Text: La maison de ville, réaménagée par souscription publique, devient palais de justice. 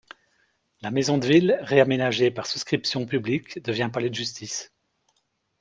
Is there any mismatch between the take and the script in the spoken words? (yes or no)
no